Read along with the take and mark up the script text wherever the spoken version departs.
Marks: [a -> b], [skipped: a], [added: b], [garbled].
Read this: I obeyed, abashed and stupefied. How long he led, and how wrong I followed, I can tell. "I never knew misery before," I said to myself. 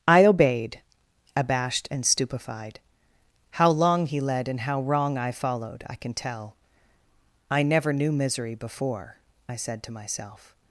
I obeyed, abashed and stupefied. How long he led, and how wrong I followed, I can tell. "I never knew misery before," I said to myself.